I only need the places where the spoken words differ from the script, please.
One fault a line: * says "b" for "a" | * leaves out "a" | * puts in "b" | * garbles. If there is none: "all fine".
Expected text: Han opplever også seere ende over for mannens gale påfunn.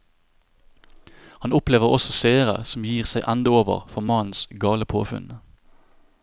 * puts in "som gir seg"